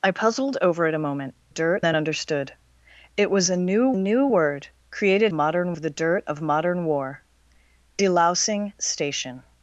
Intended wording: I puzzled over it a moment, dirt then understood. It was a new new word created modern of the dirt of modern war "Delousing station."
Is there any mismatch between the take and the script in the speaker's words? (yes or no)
no